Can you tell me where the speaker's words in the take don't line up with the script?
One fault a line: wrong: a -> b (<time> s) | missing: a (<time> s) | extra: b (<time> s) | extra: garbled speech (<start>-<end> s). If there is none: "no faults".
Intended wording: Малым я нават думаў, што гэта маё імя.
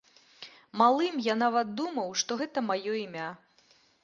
no faults